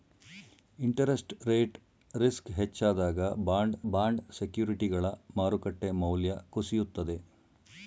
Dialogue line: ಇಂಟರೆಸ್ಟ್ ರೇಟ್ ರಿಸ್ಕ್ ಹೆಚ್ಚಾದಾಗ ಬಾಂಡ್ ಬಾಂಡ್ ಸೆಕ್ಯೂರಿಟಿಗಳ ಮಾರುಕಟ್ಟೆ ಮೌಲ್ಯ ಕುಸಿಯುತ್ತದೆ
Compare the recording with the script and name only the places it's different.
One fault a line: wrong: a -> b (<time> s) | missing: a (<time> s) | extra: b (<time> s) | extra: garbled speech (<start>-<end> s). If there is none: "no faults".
no faults